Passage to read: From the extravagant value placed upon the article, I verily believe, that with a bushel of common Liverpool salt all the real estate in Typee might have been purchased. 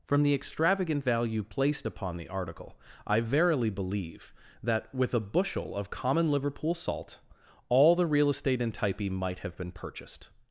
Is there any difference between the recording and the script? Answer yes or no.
no